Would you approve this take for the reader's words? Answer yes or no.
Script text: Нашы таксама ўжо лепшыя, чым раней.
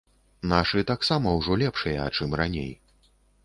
yes